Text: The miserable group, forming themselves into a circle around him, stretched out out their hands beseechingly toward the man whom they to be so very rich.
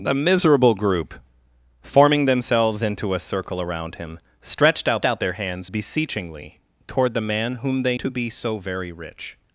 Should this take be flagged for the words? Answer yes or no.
no